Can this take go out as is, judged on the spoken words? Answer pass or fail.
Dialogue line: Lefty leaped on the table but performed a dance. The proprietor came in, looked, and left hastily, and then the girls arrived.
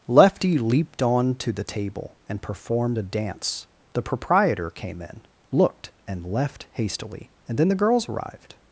fail